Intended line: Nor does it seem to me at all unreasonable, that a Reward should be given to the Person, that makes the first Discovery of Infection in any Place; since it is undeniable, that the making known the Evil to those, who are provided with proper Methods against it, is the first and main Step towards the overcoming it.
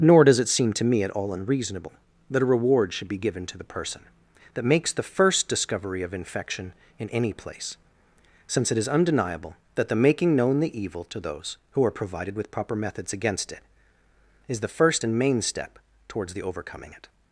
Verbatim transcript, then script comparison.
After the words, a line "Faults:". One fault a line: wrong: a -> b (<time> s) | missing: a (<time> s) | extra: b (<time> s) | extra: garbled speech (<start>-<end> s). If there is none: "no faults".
Nor does it seem to me at all unreasonable, that a Reward should be given to the Person, that makes the first Discovery of Infection in any Place; since it is undeniable, that the making known the Evil to those, who are provided with proper Methods against it, is the first and main Step towards the overcoming it.
Faults:
no faults